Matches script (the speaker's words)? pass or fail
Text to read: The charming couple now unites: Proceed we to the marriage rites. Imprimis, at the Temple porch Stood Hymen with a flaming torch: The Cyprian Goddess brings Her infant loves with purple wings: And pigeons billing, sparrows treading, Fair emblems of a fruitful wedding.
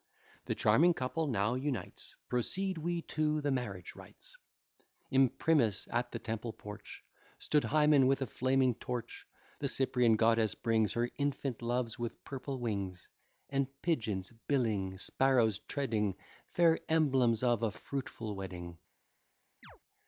pass